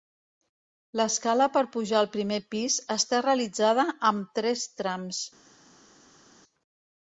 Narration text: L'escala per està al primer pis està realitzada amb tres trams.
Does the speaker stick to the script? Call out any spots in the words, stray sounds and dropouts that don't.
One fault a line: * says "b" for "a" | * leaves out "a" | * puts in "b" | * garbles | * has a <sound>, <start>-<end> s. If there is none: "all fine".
* says "pujar" for "està"